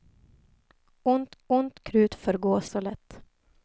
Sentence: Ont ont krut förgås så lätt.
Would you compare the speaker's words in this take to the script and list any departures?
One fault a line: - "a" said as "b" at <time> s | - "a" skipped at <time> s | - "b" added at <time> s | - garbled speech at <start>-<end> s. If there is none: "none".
none